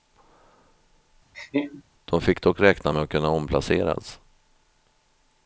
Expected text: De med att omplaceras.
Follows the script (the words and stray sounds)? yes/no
no